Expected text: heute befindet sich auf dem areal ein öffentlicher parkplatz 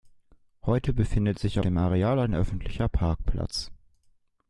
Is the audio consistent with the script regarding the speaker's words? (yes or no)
no